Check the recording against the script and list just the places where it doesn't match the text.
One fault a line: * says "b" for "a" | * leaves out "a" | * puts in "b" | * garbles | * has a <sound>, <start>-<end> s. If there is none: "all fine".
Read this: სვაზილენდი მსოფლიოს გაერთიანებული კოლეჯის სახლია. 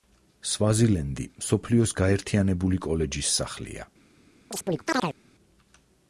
* has a chirp, 4.5-5.2 s